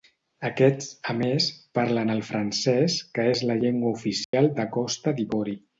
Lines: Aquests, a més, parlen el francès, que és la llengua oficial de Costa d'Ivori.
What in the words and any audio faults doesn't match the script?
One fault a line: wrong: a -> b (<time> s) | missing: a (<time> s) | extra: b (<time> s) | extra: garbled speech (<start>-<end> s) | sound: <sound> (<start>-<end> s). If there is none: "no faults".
sound: dropout (4.2-4.3 s)